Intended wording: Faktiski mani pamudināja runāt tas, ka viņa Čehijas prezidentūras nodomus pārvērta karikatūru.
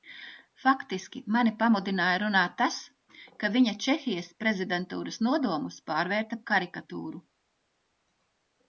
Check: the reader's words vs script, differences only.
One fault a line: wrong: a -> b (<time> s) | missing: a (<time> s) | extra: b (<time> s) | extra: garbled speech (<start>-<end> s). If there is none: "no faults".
no faults